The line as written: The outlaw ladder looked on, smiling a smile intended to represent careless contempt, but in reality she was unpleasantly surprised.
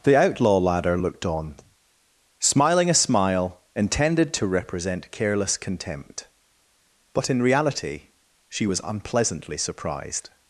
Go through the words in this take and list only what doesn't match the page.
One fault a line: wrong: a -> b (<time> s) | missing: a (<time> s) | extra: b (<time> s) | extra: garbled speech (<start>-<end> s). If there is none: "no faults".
no faults